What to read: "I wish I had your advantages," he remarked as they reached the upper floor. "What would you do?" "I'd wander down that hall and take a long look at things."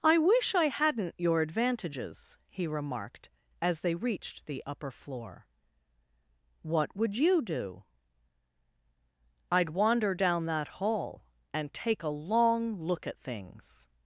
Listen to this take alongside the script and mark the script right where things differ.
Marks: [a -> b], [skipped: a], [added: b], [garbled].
"I wish I [had -> hadn't] your advantages," he remarked as they reached the upper floor. "What would you do?" "I'd wander down that hall and take a long look at things."